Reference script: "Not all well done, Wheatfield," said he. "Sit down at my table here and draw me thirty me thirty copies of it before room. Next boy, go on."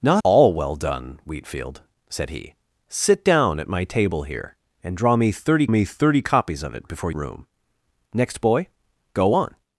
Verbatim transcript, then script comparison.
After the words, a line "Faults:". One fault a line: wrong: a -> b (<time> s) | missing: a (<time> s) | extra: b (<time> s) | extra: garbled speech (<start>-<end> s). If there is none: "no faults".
"Not all well done, Wheatfield," said he. "Sit down at my table here and draw me thirty me thirty copies of it before room. Next boy, go on."
Faults:
no faults